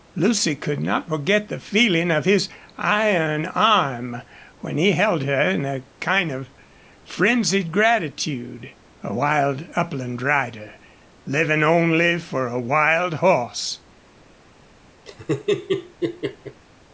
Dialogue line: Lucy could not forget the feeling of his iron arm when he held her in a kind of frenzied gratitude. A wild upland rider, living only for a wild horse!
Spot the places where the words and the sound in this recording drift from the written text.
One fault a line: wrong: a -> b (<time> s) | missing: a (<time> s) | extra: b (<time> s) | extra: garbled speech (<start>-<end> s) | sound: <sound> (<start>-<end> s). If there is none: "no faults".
sound: laugh (15.1-16.6 s)